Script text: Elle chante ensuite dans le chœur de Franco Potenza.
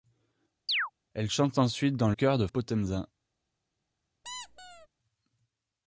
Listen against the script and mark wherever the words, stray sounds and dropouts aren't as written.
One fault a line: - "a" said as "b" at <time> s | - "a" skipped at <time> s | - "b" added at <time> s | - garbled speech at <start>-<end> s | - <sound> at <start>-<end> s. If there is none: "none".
- chirp at 0.7-0.9 s
- "le" skipped at 2.1 s
- "Franco" skipped at 2.5 s
- squeak at 4.2-4.9 s